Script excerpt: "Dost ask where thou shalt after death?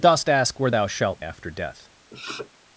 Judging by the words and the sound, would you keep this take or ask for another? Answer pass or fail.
fail